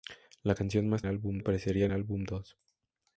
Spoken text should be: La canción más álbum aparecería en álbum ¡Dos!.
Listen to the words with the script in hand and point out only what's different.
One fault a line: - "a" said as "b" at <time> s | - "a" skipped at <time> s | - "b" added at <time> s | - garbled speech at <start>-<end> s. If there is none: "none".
none